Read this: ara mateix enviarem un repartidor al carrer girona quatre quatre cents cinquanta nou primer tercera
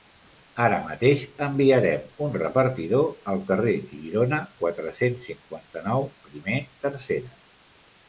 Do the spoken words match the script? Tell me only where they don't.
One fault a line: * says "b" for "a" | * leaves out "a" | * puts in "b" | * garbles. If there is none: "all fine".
* leaves out "quatre"